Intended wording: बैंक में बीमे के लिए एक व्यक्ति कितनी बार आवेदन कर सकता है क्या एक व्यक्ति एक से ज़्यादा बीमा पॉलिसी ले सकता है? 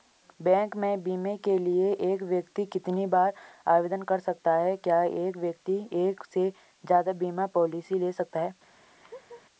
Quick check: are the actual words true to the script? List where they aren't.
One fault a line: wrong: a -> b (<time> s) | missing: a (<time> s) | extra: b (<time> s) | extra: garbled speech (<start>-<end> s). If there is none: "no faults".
no faults